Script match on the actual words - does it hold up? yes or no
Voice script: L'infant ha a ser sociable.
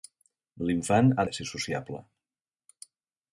yes